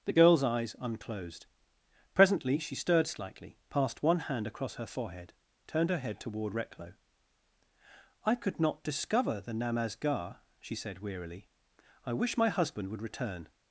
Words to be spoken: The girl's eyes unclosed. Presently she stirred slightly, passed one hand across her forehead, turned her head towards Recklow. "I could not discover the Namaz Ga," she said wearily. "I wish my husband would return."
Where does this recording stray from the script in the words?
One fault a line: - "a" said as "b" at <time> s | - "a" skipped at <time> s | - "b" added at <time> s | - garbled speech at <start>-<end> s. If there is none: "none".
- "towards" said as "toward" at 6.2 s